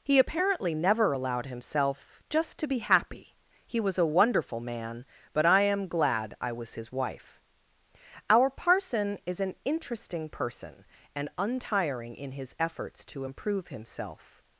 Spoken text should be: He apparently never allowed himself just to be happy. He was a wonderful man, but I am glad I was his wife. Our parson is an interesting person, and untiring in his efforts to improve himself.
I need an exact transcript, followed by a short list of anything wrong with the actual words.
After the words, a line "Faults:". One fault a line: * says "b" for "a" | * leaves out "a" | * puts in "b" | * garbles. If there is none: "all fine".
He apparently never allowed himself just to be happy. He was a wonderful man, but I am glad I was his wife. Our parson is an interesting person, and untiring in his efforts to improve himself.
Faults:
all fine